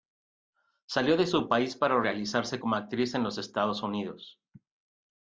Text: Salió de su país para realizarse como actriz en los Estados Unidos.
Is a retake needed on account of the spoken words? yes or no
no